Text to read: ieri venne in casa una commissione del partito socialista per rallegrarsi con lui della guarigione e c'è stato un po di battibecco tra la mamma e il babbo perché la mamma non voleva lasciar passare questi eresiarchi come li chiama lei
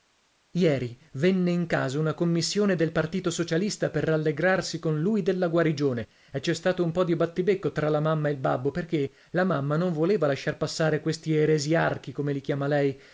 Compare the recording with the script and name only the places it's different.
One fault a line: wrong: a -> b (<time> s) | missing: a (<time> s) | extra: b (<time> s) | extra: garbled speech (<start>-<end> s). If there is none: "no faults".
no faults